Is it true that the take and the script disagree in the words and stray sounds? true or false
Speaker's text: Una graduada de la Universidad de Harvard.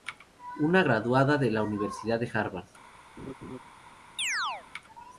true